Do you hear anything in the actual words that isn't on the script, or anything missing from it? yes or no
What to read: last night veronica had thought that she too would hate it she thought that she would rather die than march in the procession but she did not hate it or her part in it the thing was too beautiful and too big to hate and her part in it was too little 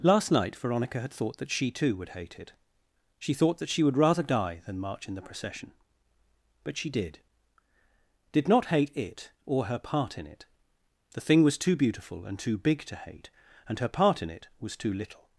yes